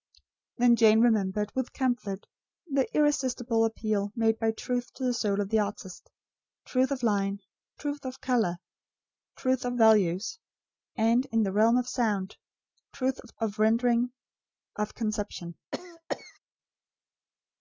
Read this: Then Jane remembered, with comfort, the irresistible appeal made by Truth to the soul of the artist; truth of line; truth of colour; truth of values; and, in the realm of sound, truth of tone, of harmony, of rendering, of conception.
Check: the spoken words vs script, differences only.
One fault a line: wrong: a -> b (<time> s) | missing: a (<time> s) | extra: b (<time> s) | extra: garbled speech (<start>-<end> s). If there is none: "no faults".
missing: tone of harmony (13.4 s)